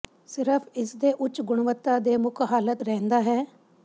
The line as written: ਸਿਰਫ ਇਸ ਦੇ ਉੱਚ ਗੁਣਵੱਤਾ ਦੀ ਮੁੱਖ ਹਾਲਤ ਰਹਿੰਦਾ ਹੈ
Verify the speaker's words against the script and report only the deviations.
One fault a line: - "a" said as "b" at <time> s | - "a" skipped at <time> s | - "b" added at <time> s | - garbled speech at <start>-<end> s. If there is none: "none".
- "ਦੀ" said as "ਦੇ" at 2.0 s